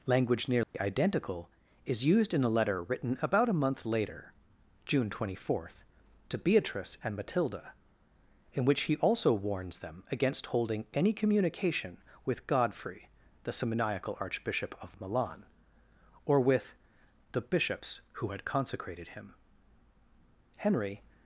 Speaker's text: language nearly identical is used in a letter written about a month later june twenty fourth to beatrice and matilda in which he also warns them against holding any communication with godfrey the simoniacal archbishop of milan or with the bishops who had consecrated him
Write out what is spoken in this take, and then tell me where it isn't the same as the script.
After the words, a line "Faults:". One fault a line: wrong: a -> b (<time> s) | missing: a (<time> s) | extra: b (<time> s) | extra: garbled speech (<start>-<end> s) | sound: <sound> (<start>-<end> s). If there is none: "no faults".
language nearly identical is used in a letter written about a month later june twenty fourth to beatrice and matilda in which he also warns them against holding any communication with godfrey the simoniacal archbishop of milan or with the bishops who had consecrated him henry
Faults:
sound: dropout (0.6-0.7 s)
extra: henry (20.6 s)